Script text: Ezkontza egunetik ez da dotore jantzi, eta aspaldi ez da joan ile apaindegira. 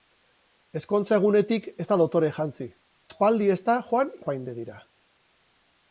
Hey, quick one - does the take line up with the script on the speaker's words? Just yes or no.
no